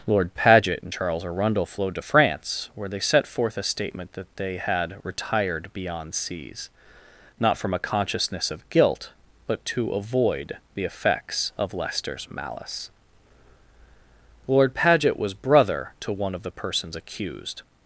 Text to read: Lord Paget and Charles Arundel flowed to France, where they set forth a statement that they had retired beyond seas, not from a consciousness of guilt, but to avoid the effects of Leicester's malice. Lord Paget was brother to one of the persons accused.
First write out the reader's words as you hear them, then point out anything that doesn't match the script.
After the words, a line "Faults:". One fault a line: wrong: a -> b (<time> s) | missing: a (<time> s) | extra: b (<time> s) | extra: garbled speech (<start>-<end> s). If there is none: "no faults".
Lord Paget and Charles Arundel flowed to France, where they set forth a statement that they had retired beyond seas, not from a consciousness of guilt, but to avoid the effects of Leicester's malice. Lord Paget was brother to one of the persons accused.
Faults:
no faults